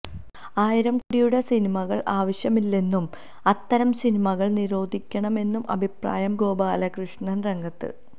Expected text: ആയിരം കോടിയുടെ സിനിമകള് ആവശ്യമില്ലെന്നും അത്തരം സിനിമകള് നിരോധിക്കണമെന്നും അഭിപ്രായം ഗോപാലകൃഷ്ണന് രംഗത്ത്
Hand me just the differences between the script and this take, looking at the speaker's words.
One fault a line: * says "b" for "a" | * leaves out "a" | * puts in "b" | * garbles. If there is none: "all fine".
all fine